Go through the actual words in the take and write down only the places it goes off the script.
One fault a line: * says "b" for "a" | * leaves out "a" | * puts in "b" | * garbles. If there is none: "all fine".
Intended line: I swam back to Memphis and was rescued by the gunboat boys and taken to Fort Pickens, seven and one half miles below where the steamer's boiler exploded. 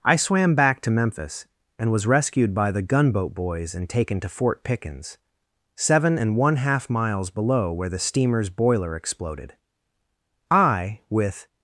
* puts in "I with"